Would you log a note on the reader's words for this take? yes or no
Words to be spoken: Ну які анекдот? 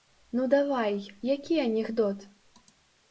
yes